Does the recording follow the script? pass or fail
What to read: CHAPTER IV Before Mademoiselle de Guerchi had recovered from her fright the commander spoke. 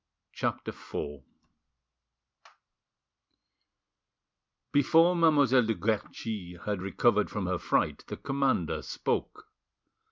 pass